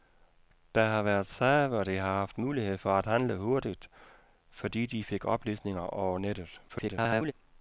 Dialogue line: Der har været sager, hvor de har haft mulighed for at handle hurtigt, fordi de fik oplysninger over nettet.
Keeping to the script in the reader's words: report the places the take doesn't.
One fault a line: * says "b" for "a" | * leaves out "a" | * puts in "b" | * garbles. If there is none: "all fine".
* garbles